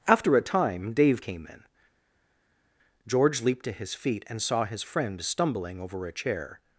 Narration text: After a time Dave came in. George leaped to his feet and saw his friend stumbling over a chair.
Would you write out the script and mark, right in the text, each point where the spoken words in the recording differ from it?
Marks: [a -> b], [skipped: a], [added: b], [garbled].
After a time Dave came in. George leaped to his feet and saw his friend stumbling over a chair.